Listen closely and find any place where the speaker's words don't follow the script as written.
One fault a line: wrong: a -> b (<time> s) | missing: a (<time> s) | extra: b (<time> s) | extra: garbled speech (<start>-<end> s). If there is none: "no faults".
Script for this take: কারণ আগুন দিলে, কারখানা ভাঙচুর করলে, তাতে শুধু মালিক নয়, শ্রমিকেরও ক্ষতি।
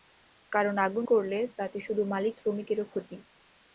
missing: দিলে কারখানা ভাঙচুর (1.1 s)
missing: নয় (2.3 s)